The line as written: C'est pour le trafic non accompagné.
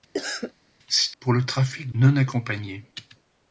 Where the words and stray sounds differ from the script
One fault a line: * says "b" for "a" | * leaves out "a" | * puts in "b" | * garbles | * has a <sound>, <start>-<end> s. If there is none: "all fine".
* has a cough, 0.1-0.5 s